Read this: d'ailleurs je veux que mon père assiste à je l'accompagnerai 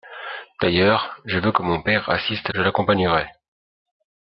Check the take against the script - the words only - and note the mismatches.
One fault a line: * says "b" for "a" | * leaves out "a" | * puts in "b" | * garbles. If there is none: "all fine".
all fine